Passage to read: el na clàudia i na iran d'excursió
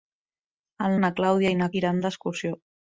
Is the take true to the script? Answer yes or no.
yes